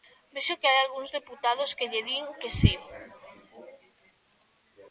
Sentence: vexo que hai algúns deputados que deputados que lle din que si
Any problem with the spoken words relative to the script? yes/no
yes